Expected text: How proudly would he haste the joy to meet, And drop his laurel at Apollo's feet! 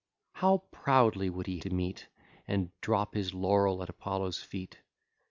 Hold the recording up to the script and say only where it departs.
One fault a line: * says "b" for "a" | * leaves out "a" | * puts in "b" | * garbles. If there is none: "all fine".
* leaves out "haste the joy"